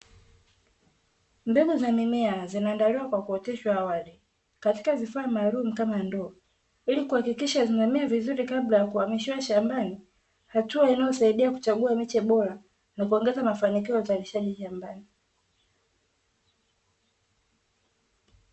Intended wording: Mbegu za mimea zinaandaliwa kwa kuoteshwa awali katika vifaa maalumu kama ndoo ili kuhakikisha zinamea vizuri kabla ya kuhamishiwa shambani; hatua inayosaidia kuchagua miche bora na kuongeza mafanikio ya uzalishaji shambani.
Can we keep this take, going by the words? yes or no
yes